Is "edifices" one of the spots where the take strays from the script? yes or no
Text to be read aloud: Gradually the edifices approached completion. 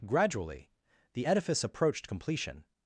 yes